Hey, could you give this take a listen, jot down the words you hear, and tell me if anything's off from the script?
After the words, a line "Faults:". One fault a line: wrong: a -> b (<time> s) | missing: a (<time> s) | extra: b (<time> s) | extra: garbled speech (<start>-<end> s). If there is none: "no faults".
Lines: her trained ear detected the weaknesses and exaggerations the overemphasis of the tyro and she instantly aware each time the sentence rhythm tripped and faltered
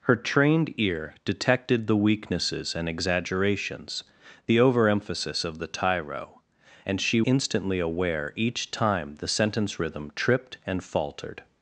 her trained ear detected the weaknesses and exaggerations the overemphasis of the tyro and she instantly aware each time the sentence rhythm tripped and faltered
Faults:
no faults